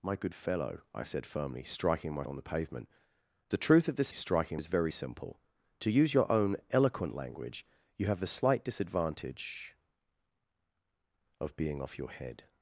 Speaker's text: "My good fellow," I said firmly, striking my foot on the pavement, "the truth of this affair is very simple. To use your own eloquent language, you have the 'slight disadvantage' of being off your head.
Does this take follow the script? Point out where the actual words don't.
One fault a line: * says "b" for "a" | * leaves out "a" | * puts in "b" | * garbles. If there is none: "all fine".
* leaves out "foot"
* says "striking" for "affair"